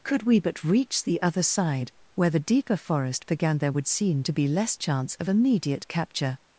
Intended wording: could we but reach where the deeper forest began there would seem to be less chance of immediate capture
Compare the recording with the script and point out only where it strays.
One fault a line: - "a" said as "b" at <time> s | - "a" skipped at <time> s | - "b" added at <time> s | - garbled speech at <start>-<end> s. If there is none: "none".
- "the other side" added at 1.0 s